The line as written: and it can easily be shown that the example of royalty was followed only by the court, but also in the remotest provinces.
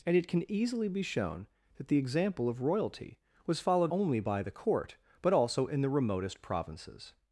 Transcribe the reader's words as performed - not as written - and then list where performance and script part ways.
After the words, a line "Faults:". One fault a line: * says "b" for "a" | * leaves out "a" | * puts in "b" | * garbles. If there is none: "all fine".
and it can easily be shown that the example of royalty was followed only by the court, but also in the remotest provinces.
Faults:
all fine